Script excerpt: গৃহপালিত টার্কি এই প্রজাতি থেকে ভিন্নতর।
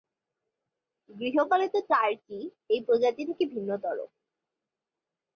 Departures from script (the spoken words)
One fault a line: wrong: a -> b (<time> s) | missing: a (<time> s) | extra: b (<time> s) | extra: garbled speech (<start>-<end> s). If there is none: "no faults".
no faults